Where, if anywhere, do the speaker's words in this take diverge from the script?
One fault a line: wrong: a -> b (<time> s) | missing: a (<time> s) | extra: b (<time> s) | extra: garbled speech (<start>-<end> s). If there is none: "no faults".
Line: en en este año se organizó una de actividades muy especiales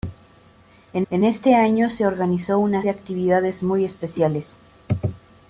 no faults